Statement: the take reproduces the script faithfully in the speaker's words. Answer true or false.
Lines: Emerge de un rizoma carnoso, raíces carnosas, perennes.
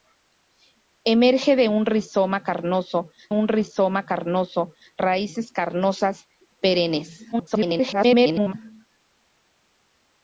false